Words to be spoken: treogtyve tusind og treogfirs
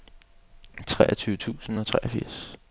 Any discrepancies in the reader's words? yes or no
no